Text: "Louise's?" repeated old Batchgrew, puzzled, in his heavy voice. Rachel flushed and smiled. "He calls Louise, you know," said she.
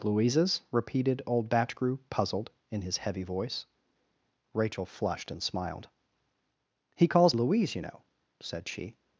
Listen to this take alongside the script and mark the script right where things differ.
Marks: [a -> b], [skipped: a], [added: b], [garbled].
"Louise's?" repeated old Batchgrew, puzzled, in his heavy voice. Rachel flushed and smiled. "He calls Louise, you know," said she.